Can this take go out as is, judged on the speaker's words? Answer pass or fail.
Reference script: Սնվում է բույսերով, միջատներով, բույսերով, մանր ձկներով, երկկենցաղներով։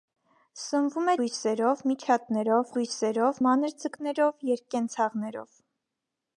pass